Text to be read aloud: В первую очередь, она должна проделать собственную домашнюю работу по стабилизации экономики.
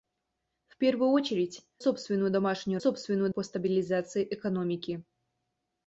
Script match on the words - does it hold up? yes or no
no